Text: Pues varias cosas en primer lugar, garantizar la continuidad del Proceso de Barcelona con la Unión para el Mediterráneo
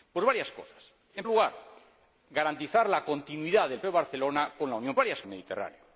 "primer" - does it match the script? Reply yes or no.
no